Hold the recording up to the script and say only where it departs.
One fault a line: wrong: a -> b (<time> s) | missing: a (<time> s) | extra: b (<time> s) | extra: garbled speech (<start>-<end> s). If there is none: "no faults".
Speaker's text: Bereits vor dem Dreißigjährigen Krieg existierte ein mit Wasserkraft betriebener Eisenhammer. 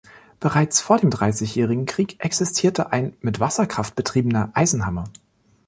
no faults